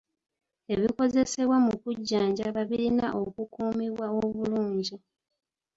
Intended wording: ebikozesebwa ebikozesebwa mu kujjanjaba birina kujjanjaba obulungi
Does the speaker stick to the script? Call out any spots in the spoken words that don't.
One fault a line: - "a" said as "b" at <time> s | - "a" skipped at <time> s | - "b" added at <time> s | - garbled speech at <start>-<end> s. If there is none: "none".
- "ebikozesebwa" skipped at 1.6 s
- "kujjanjaba" said as "okukuumibwa" at 3.2 s